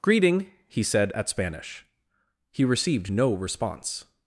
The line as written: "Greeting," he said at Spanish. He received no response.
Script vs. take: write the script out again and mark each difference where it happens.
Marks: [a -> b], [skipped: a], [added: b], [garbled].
"Greeting," he said at Spanish. He received no response.